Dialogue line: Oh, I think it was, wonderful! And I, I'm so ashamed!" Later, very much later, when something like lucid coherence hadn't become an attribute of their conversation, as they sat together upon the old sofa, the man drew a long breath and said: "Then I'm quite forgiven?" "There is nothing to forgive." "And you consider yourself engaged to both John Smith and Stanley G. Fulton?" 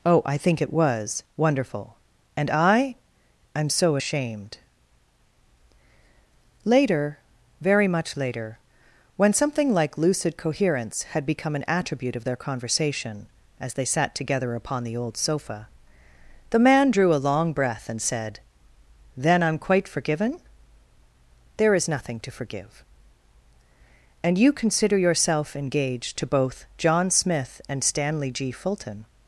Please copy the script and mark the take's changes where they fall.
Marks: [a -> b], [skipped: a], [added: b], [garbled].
Oh, I think it was, wonderful! And I, I'm so ashamed!" Later, very much later, when something like lucid coherence [hadn't -> had] become an attribute of their conversation, as they sat together upon the old sofa, the man drew a long breath and said: "Then I'm quite forgiven?" "There is nothing to forgive." "And you consider yourself engaged to both John Smith and Stanley G. Fulton?"